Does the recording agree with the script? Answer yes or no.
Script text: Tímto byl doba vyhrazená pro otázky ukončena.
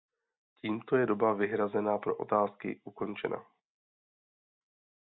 no